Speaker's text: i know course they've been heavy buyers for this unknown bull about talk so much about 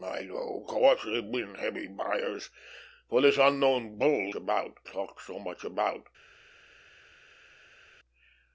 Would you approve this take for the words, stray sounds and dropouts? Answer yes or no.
yes